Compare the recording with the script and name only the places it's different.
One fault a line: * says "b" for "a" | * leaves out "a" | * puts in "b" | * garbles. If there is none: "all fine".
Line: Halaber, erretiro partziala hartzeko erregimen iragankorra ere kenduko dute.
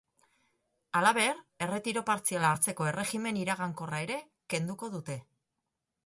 all fine